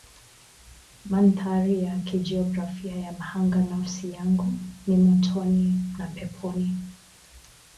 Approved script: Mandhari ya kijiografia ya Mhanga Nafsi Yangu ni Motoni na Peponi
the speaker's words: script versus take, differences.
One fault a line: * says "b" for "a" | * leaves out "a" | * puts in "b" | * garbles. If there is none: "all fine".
all fine